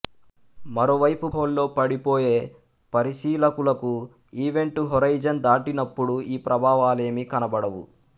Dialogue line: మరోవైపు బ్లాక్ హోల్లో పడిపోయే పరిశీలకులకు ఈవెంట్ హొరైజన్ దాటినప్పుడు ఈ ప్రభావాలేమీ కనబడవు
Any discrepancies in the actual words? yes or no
yes